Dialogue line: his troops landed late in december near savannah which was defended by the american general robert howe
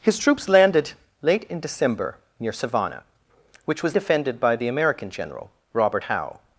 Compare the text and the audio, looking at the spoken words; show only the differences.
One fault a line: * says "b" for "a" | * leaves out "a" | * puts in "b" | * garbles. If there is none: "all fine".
all fine